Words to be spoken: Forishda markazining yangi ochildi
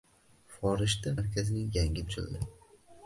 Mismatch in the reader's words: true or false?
false